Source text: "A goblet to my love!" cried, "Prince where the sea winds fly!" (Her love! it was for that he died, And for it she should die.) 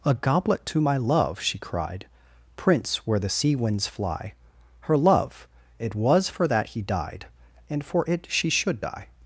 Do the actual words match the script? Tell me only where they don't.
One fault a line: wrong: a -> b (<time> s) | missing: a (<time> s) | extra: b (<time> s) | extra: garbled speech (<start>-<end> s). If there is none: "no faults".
extra: she (1.4 s)